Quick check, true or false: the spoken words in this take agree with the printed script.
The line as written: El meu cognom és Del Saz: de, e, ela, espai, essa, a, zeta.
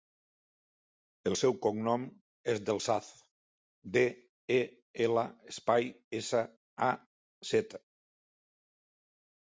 false